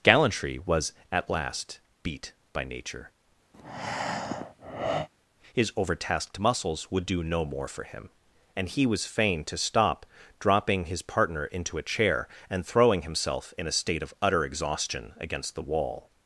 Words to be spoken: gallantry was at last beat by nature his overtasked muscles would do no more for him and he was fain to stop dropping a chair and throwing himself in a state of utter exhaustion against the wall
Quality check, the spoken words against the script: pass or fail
fail